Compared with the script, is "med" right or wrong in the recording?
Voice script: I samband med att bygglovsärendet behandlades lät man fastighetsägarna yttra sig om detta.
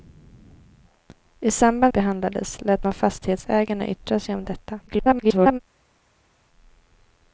wrong